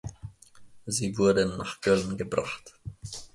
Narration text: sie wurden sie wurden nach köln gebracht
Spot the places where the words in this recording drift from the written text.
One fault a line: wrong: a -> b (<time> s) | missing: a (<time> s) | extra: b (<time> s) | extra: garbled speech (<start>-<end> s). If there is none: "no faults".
missing: sie wurden (1.6 s)